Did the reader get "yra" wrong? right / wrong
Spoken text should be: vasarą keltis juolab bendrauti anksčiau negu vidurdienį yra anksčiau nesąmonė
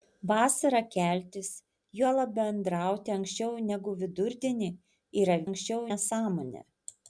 right